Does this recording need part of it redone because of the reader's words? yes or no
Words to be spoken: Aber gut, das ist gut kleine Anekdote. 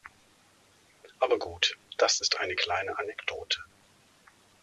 yes